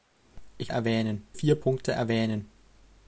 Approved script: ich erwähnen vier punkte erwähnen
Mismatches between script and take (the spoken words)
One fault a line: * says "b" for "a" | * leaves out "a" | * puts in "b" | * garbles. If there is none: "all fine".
all fine